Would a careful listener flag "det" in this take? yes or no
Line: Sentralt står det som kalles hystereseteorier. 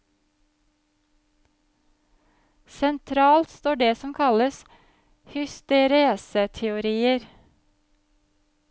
no